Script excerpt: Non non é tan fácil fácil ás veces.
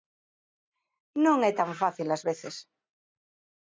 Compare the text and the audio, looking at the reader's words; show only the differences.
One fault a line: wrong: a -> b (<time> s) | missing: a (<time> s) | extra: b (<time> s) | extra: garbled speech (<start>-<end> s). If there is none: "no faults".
missing: non (1.4 s)
missing: fácil (2.1 s)